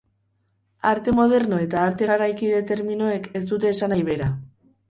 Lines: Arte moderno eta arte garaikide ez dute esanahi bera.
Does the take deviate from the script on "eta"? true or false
false